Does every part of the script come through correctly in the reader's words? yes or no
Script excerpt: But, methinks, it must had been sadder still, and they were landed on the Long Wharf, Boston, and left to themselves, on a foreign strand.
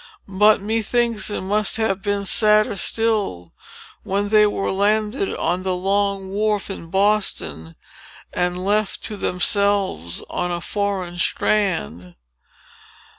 no